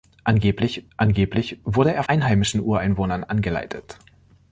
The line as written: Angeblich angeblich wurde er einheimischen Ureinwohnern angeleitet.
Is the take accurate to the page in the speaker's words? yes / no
yes